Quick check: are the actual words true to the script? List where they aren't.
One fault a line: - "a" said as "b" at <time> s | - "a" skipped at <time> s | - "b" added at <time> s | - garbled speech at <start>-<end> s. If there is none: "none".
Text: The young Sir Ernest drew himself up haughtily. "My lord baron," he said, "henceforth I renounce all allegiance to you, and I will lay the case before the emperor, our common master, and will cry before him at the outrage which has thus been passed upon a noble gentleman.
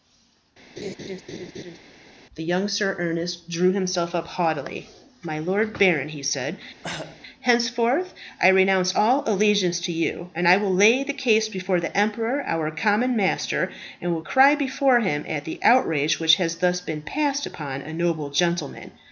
none